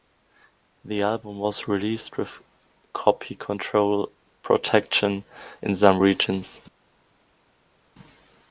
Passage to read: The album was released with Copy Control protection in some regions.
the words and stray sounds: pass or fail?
pass